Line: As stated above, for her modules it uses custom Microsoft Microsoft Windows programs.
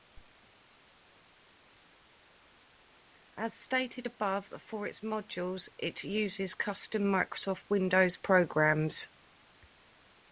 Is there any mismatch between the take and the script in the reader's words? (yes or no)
yes